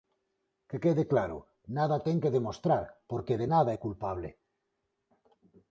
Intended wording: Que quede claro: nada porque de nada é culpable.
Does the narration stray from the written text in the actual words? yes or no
yes